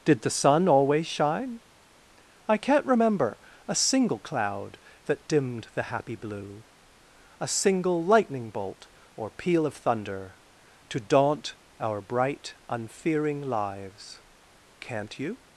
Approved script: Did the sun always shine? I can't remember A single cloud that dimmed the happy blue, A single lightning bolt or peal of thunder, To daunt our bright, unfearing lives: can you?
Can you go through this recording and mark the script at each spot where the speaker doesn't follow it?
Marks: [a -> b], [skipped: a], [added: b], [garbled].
Did the sun always shine? I can't remember A single cloud that dimmed the happy blue, A single lightning bolt or peal of thunder, To daunt our bright, unfearing lives: [can -> can't] you?